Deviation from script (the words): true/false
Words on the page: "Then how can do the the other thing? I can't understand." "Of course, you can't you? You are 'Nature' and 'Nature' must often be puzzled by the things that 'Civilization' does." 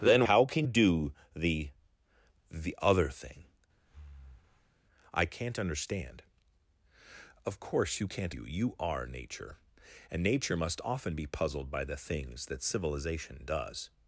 false